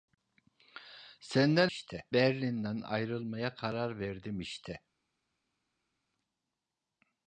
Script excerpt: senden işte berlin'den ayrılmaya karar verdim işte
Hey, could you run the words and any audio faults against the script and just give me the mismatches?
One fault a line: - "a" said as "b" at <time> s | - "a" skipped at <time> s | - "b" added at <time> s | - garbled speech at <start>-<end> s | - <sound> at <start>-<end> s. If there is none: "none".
none